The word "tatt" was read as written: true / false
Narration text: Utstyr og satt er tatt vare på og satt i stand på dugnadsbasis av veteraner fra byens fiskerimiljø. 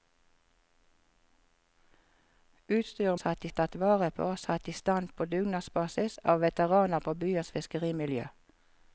true